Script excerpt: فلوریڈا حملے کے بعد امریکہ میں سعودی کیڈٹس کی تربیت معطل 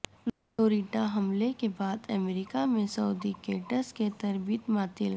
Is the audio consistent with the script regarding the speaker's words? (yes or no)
yes